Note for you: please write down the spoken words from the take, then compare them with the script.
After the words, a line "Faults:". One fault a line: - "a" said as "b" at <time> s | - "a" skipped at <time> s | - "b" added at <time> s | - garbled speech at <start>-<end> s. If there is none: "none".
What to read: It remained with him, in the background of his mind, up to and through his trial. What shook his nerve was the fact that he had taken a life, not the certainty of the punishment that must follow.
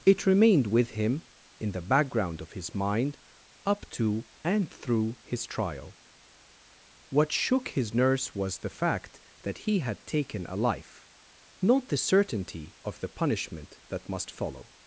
It remained with him, in the background of his mind, up to and through his trial. What shook his nurse was the fact that he had taken a life, not the certainty of the punishment that must follow.
Faults:
- "nerve" said as "nurse" at 7.9 s